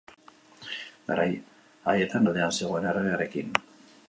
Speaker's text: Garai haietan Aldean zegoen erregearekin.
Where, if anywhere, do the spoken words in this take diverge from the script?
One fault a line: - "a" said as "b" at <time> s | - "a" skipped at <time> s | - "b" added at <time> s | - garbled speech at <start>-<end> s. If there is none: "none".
none